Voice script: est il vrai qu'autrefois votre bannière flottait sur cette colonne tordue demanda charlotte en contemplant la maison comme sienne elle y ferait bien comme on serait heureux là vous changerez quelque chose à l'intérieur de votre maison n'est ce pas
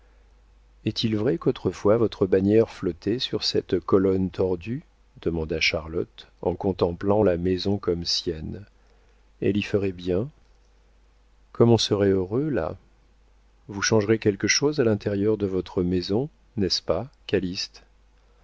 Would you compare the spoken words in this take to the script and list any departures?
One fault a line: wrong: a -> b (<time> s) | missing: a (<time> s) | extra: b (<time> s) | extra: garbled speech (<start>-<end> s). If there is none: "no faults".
no faults